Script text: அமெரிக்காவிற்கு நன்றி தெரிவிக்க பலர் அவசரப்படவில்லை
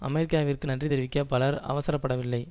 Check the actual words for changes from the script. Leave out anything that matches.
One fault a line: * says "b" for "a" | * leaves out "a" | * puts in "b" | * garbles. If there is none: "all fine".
all fine